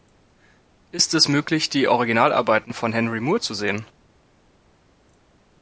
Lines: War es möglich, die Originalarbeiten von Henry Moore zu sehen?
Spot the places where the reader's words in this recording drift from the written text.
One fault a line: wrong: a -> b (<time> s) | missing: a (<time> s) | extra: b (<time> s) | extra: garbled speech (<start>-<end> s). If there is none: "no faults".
wrong: War -> Ist (0.9 s)